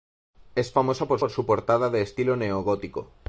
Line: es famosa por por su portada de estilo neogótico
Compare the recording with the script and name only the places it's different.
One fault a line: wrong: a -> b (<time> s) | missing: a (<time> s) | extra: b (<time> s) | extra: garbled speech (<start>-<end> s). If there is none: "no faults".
no faults